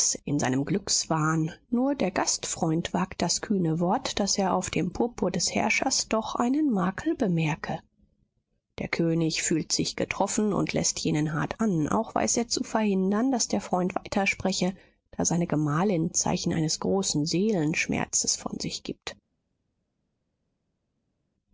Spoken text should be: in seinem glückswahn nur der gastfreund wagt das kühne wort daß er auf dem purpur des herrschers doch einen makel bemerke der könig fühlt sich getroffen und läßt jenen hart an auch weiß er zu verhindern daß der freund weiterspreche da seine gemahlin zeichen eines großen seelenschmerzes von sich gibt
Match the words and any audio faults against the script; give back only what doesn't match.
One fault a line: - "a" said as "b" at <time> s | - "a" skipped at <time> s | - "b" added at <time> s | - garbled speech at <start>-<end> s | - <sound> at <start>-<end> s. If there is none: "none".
none